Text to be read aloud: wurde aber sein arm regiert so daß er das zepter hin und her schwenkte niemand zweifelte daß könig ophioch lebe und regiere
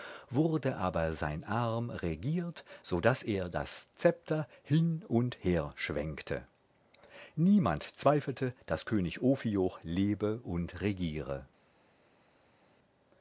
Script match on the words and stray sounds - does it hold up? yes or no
yes